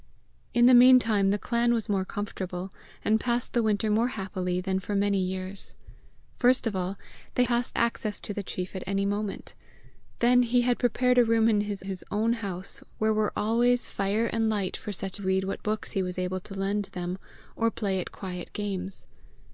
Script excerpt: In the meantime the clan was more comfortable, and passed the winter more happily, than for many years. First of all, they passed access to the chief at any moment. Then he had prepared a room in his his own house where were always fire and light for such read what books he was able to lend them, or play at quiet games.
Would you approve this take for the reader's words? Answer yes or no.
yes